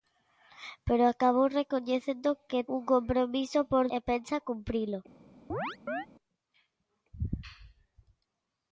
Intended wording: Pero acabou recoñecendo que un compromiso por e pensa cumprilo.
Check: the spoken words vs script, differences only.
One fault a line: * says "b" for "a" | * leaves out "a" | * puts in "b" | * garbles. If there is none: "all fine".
all fine